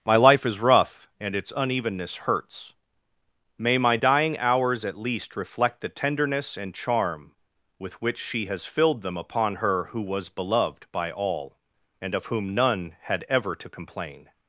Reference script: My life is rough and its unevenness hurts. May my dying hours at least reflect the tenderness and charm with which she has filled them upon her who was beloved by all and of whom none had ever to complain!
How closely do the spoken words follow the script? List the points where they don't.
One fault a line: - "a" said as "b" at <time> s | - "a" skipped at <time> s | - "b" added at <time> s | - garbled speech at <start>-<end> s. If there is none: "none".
none